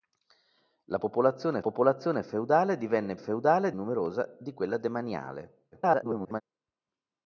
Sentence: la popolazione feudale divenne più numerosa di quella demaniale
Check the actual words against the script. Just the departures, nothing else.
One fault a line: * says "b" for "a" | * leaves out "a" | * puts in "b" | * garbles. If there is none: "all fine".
* puts in "popolazione"
* says "feudale" for "più"
* garbles